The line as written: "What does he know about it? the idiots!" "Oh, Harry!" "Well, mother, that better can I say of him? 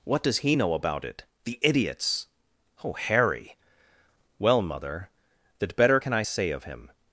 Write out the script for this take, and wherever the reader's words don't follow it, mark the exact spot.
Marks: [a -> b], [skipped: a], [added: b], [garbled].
"What does he know about it? the idiots!" "Oh, Harry!" "Well, mother, that better can I say of him?